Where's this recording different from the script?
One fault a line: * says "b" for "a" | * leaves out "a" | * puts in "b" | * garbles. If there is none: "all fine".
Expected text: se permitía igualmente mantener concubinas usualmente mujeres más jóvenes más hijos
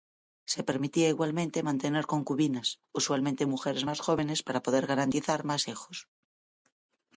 * puts in "para poder garantizar"